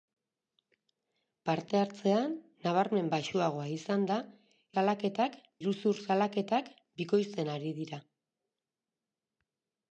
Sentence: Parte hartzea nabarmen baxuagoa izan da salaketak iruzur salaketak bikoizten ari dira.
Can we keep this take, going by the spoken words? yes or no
yes